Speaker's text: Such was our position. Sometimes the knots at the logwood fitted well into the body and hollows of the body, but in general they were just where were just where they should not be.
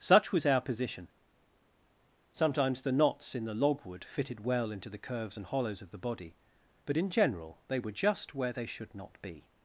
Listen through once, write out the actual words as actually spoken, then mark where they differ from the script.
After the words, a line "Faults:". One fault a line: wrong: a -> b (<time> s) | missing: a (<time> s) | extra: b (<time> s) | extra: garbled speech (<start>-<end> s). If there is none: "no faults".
Such was our position. Sometimes the knots in the logwood fitted well into the curves and hollows of the body, but in general they were just where they should not be.
Faults:
wrong: at -> in (3.4 s)
wrong: body -> curves (5.0 s)
missing: were just where (8.5 s)